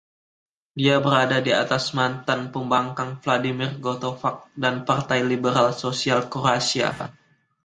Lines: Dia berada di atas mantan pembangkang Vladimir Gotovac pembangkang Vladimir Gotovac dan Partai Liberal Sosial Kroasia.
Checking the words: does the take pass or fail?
fail